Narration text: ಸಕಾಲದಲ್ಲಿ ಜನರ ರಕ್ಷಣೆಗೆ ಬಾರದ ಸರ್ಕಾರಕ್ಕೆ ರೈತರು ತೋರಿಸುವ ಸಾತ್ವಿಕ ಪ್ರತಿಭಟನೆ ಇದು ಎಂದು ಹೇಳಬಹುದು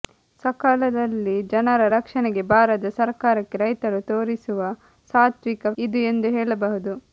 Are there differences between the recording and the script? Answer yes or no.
yes